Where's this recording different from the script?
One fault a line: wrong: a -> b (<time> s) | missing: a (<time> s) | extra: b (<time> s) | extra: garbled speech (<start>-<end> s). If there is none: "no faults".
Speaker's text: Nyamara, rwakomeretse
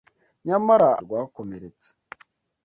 no faults